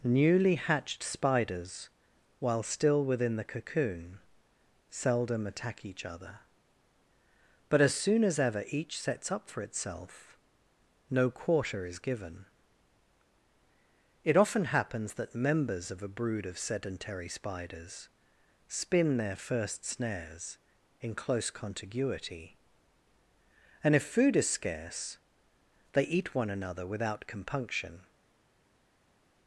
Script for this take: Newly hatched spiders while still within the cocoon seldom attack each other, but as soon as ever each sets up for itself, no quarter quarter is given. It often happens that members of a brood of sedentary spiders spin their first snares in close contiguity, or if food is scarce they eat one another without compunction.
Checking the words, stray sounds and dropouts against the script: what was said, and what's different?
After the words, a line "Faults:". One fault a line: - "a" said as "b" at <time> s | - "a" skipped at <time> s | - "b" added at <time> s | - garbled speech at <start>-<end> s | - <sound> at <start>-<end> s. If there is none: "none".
Newly hatched spiders while still within the cocoon seldom attack each other, but as soon as ever each sets up for itself, no quarter is given. It often happens that members of a brood of sedentary spiders spin their first snares in close contiguity, and if food is scarce they eat one another without compunction.
Faults:
- "quarter" skipped at 11.8 s
- "or" said as "and" at 23.8 s